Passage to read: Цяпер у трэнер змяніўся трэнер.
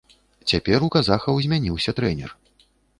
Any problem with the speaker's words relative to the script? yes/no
yes